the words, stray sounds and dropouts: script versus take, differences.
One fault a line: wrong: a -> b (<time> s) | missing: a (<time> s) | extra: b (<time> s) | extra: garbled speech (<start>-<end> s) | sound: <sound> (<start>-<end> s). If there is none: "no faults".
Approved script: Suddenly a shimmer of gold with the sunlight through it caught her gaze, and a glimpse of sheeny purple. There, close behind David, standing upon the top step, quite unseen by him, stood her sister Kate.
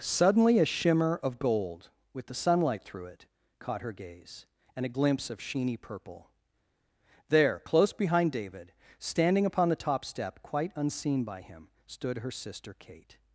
no faults